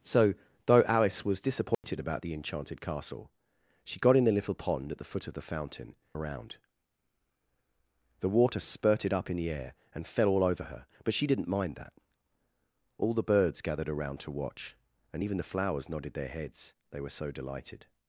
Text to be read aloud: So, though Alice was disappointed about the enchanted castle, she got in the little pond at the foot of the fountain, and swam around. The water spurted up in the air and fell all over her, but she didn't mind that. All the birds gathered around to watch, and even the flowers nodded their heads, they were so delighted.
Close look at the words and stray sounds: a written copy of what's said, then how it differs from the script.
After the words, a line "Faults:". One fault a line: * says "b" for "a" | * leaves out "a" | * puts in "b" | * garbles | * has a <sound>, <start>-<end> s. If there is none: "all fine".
So, though Alice was disappointed about the enchanted castle, she got in the little pond at the foot of the fountain, around. The water spurted up in the air and fell all over her, but she didn't mind that. All the birds gathered around to watch, and even the flowers nodded their heads, they were so delighted.
Faults:
* has a dropout, 1.7-1.8 s
* leaves out "and swam"